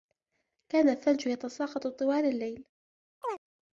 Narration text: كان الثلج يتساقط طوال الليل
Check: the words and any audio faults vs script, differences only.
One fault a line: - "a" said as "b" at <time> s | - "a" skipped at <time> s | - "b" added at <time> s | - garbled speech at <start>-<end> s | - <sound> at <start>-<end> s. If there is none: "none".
- chirp at 3.2-3.4 s